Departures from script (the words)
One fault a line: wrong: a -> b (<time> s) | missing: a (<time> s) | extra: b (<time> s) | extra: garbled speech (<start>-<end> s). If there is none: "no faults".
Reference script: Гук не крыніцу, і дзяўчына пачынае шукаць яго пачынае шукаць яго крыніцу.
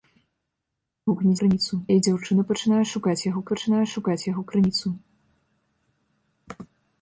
no faults